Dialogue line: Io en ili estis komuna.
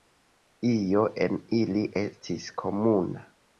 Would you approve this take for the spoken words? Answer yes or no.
yes